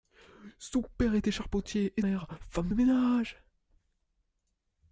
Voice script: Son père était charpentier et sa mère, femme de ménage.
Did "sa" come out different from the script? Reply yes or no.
yes